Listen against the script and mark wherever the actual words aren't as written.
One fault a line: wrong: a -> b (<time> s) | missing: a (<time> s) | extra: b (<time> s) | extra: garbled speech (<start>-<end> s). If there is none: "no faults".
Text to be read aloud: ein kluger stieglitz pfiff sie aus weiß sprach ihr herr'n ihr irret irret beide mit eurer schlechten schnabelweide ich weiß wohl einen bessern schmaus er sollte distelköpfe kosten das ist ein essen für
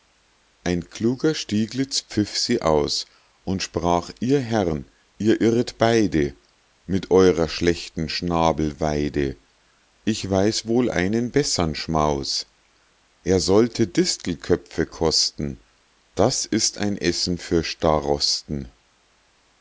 wrong: weiß -> und (3.4 s)
missing: irret (5.8 s)